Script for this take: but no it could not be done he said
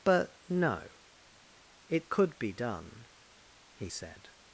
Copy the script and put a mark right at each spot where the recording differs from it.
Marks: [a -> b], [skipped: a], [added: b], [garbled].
but no it could [skipped: not] be done he said